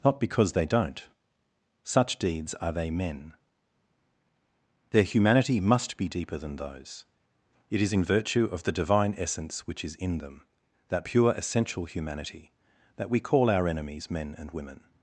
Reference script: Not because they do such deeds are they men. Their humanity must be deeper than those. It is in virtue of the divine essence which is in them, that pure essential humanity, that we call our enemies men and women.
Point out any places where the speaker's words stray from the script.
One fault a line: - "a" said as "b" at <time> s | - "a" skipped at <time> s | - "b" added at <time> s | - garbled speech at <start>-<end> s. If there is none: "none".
- "do" said as "don't" at 0.7 s